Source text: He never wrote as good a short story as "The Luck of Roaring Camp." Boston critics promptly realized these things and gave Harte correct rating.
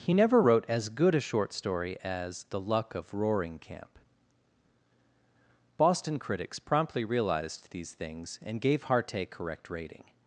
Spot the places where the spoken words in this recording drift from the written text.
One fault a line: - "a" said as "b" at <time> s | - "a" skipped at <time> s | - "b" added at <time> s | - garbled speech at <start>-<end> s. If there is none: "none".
none